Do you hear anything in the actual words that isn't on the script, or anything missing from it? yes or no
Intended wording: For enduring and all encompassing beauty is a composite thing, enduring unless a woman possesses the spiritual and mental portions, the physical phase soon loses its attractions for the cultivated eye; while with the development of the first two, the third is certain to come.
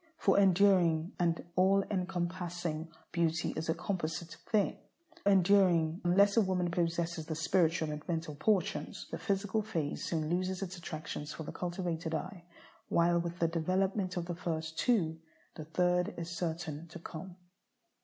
no